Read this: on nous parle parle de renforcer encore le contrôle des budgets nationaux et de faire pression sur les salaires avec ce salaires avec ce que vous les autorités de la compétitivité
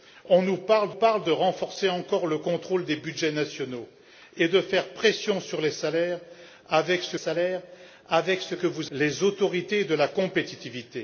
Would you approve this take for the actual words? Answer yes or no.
yes